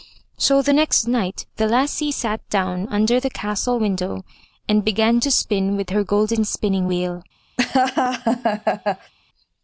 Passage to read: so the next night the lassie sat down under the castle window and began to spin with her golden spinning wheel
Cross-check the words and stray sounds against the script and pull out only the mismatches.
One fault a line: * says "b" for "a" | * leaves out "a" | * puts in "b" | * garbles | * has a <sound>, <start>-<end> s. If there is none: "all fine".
* has a laugh, 7.6-9.1 s